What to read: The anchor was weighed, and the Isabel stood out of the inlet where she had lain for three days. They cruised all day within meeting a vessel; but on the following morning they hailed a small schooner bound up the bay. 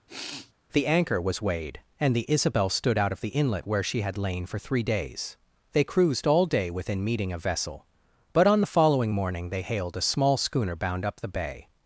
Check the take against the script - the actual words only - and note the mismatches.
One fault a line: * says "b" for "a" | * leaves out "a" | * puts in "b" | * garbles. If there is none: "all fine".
all fine